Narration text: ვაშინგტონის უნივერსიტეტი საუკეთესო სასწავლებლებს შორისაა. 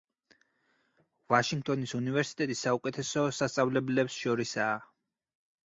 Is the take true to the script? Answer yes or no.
yes